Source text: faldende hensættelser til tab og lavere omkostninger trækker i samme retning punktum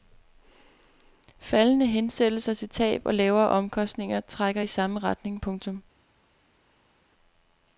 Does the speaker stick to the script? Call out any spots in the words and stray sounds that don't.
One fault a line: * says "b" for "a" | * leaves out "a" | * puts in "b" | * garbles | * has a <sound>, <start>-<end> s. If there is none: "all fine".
all fine